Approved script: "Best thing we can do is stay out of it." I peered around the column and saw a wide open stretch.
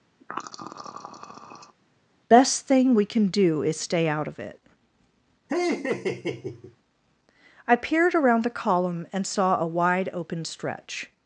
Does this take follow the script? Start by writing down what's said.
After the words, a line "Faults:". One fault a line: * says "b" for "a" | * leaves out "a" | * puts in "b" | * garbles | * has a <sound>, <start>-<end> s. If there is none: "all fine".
"Best thing we can do is stay out of it." I peered around the column and saw a wide open stretch.
Faults:
* has a throat clearing, 0.2-1.8 s
* has a laugh, 5.5-6.8 s